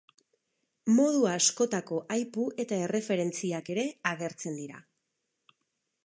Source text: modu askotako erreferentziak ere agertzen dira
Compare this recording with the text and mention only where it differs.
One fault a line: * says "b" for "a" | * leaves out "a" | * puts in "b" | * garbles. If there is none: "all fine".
* puts in "aipu eta"